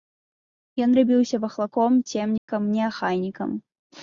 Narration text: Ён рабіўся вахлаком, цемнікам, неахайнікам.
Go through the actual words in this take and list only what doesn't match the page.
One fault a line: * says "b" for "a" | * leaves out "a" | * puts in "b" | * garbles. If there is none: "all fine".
all fine